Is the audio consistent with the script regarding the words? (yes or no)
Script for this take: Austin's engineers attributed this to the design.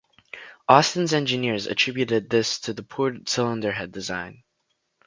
no